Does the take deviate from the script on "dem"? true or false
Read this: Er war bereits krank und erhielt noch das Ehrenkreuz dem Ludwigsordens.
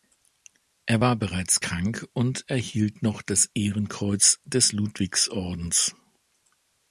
true